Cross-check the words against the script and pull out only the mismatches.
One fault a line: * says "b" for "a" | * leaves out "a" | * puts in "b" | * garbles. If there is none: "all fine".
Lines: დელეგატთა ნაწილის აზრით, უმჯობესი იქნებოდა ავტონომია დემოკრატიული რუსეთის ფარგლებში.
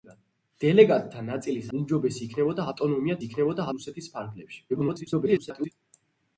* leaves out "აზრით"
* says "იქნებოდა" for "დემოკრატიული"
* garbles